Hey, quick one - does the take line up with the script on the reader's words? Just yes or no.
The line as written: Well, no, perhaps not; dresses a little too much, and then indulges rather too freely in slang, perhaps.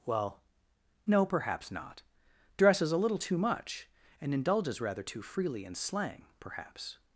no